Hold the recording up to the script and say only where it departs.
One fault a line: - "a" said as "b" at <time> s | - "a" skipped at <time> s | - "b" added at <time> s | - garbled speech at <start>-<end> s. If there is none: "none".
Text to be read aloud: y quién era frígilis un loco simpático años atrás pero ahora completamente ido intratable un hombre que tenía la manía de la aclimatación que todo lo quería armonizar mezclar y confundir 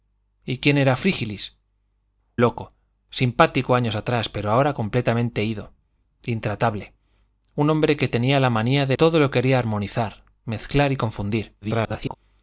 - "un" skipped at 1.6 s
- "la aclimatación que" skipped at 9.0 s
- garbled speech at 11.6-12.2 s